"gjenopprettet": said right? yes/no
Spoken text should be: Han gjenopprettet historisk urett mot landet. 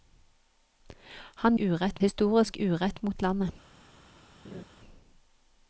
no